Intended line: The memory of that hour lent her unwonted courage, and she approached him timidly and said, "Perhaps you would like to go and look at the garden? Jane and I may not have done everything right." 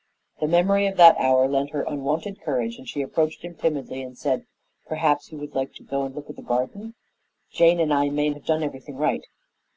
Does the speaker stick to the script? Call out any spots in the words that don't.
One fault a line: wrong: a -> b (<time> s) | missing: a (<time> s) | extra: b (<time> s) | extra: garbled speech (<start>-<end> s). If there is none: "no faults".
missing: not (8.3 s)